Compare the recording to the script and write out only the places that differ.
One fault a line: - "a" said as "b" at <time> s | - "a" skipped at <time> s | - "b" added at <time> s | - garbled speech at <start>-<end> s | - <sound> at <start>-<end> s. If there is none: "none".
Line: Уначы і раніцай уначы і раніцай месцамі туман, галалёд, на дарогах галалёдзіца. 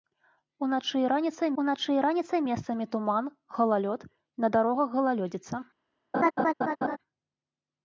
- laugh at 6.1-7.0 s